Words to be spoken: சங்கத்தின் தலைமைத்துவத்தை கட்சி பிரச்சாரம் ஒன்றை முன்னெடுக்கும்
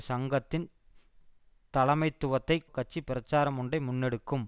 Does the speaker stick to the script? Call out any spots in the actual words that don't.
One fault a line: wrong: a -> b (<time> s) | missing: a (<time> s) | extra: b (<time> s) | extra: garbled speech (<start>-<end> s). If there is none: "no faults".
no faults